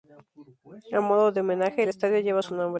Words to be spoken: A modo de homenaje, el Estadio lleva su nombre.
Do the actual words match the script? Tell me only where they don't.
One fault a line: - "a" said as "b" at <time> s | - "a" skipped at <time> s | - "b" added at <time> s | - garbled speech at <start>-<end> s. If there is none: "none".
none